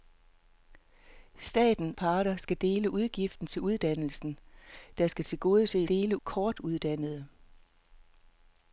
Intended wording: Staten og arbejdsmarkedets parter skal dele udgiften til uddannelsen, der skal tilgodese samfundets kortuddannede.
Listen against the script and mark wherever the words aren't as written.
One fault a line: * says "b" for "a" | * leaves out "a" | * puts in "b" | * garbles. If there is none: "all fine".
* leaves out "og arbejdsmarkedets"
* says "dele" for "samfundets"